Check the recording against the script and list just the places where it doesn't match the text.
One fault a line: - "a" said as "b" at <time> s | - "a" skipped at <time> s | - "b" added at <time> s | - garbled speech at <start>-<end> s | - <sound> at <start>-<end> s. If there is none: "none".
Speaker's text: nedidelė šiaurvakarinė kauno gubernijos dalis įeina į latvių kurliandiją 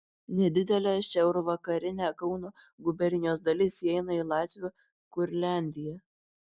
none